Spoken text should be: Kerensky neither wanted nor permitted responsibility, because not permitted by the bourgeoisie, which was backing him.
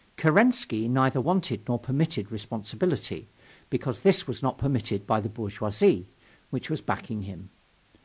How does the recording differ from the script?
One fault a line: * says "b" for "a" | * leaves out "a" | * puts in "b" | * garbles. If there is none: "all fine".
* puts in "this was"